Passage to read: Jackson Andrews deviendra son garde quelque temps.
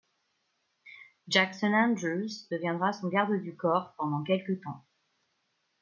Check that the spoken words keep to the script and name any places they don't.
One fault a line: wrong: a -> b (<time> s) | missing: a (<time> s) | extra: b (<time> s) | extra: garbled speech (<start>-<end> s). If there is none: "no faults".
extra: du corps pendant (3.4 s)